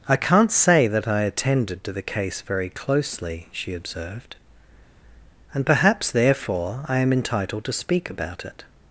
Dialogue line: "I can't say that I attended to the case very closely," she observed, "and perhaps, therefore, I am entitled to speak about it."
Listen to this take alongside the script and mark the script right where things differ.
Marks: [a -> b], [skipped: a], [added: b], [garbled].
"I can't say that I attended to the case very closely," she observed, "and perhaps, therefore, I am entitled to speak about it."